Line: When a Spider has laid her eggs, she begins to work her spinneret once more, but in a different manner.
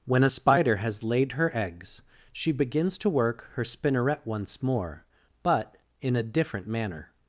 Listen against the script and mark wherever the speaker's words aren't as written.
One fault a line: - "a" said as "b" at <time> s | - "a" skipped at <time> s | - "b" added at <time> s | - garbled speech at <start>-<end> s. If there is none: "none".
none